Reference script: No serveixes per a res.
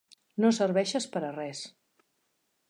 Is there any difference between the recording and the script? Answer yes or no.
no